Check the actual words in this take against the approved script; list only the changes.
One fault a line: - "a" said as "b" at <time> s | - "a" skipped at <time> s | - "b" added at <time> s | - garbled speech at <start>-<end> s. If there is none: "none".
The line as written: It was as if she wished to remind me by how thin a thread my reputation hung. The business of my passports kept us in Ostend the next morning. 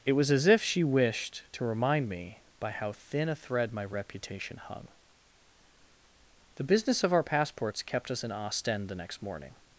- "my" said as "our" at 7.1 s